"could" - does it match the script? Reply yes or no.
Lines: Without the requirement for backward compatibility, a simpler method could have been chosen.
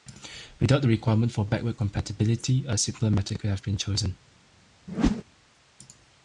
yes